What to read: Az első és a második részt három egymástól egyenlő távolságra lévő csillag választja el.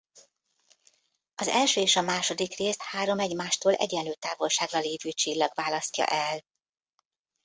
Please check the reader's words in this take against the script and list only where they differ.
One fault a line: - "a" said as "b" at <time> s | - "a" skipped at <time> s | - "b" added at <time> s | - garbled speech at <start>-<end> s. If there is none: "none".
none